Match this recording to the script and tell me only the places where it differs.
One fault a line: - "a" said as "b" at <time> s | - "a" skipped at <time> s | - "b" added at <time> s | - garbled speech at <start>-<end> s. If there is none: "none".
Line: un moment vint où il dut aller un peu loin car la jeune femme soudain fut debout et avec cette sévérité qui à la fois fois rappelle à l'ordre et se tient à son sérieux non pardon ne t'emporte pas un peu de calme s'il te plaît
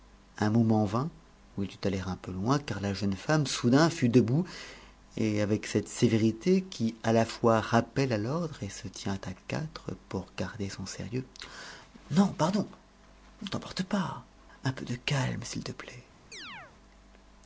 - "fois" skipped at 7.6 s
- "quatre pour garder" added at 9.5 s